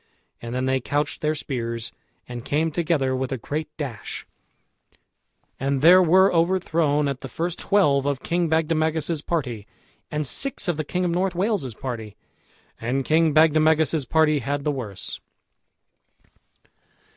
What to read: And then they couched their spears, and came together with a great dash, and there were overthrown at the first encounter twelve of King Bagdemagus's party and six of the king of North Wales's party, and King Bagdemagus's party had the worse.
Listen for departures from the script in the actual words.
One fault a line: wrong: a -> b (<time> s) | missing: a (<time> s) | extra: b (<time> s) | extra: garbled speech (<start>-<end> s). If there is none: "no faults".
missing: encounter (7.6 s)